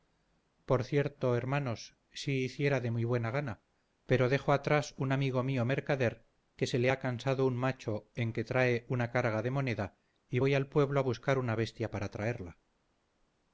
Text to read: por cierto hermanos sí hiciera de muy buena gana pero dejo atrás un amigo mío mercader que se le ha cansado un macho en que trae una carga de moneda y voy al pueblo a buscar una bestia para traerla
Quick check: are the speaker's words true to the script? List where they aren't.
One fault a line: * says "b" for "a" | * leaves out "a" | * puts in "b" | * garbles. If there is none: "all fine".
all fine